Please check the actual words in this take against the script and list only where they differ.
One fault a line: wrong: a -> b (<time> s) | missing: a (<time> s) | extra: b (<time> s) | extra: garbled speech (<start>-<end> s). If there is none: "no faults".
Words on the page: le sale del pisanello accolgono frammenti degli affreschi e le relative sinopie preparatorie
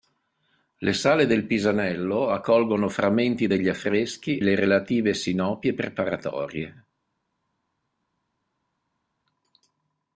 missing: e (4.4 s)